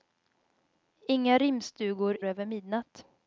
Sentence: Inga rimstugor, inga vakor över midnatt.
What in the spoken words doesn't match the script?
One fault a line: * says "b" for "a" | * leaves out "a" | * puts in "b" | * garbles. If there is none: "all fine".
* leaves out "inga vakor"